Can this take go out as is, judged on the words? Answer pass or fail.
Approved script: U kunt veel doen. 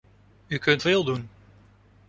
pass